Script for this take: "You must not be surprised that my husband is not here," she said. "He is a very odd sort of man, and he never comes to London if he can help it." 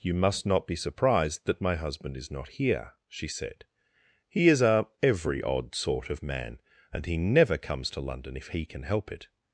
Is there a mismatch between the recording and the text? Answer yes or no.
yes